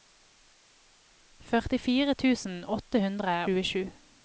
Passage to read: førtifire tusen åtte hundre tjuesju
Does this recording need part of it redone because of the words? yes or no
no